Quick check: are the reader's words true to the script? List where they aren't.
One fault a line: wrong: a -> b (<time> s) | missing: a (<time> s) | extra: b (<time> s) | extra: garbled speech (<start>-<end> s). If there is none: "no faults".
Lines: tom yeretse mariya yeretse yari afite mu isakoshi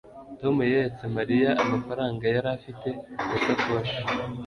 wrong: yeretse -> amafaranga (1.6 s)